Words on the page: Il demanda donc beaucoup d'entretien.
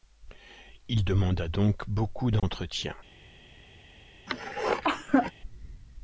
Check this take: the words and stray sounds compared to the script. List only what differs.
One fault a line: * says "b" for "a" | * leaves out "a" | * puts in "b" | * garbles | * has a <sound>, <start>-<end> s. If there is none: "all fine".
* has a dropout, 2.4-2.4 s
* has a cough, 4.3-5.3 s